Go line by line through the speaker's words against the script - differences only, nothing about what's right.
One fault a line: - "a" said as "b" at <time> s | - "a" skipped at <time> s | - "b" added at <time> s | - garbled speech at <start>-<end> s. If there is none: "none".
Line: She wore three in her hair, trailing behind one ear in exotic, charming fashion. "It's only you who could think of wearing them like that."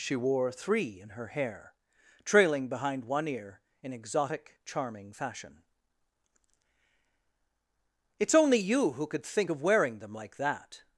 none